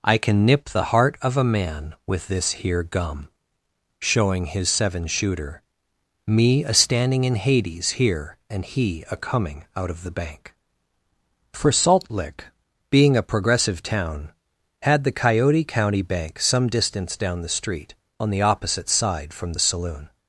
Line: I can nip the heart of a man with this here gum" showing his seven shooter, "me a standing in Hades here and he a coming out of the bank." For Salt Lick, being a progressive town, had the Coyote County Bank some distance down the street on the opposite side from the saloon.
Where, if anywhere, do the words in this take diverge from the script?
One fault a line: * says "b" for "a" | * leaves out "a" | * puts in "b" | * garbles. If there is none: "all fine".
all fine